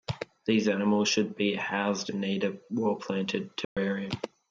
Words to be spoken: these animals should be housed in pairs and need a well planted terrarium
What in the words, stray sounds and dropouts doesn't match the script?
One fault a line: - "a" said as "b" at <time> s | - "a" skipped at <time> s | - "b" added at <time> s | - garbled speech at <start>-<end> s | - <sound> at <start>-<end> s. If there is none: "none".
- "in pairs" skipped at 2.1 s
- dropout at 3.6-3.8 s